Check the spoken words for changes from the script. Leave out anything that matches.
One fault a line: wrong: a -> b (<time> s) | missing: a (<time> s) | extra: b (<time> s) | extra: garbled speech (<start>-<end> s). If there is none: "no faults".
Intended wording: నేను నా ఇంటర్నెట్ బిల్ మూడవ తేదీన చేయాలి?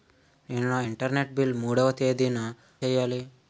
no faults